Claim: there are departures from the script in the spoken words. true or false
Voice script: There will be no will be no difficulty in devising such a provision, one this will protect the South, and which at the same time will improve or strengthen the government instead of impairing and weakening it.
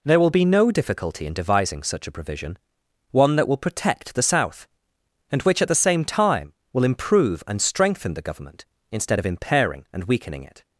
true